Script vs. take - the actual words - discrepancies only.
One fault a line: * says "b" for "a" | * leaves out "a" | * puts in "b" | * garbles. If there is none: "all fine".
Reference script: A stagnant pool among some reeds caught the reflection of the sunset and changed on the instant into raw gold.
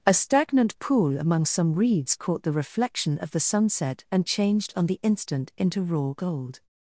all fine